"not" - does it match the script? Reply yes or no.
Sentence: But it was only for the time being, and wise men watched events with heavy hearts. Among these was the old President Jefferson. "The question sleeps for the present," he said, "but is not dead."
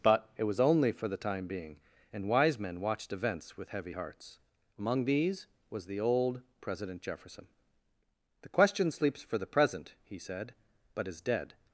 no